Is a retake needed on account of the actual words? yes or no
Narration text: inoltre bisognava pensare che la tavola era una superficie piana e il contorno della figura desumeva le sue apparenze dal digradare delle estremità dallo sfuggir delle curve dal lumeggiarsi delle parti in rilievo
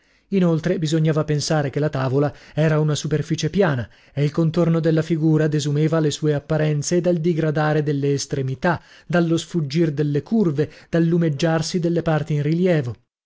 no